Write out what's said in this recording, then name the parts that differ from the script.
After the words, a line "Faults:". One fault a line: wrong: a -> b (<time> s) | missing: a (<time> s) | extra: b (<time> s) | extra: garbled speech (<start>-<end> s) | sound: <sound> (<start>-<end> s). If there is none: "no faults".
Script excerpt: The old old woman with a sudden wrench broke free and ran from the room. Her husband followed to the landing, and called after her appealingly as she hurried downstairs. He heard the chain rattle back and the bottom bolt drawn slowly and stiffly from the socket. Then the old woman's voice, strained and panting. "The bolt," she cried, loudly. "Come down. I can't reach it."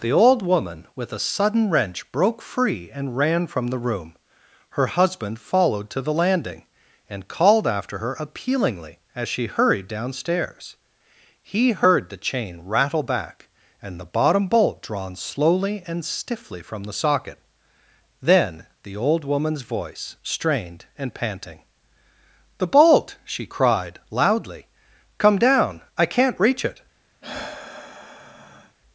The old woman with a sudden wrench broke free and ran from the room. Her husband followed to the landing, and called after her appealingly as she hurried downstairs. He heard the chain rattle back and the bottom bolt drawn slowly and stiffly from the socket. Then the old woman's voice, strained and panting. "The bolt," she cried, loudly. "Come down. I can't reach it."
Faults:
missing: old (0.4 s)
sound: sigh (27.2-28.8 s)